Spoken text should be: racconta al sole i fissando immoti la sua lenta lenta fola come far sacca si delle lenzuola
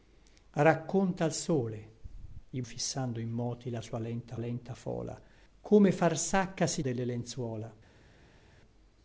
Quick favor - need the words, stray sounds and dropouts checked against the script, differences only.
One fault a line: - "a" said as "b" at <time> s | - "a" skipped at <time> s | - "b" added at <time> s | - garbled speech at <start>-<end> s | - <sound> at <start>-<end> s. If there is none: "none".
none